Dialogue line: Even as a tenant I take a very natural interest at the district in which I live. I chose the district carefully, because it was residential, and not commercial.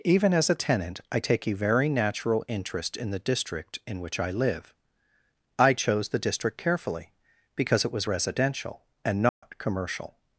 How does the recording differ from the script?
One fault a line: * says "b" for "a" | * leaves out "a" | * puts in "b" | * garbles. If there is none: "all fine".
* says "in" for "at"